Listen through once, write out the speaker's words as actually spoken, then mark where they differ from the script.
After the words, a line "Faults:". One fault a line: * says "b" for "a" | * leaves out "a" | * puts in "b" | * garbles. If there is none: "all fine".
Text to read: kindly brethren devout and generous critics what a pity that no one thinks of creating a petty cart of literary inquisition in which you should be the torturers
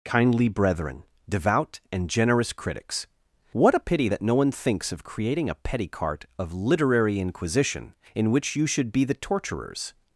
kindly brethren devout and generous critics what a pity that no one thinks of creating a petty cart of literary inquisition in which you should be the torturers
Faults:
all fine